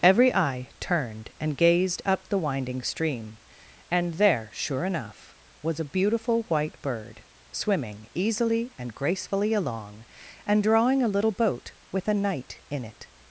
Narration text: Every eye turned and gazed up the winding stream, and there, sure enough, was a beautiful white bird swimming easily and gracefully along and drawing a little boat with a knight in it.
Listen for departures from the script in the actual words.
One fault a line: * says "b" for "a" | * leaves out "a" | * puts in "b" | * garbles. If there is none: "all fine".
all fine